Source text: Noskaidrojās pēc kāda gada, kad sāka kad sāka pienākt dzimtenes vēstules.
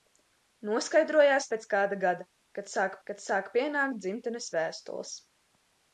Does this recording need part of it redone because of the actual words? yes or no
no